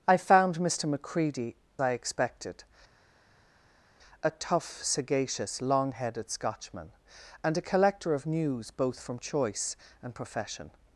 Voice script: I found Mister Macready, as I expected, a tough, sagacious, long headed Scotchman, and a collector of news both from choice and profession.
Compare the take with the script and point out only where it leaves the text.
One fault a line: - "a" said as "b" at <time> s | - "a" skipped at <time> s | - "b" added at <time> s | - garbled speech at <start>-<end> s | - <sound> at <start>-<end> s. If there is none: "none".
- "as" skipped at 1.6 s